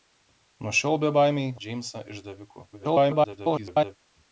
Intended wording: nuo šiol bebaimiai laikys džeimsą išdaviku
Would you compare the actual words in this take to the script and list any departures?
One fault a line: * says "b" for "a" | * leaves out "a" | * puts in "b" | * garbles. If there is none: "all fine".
* leaves out "laikys"
* garbles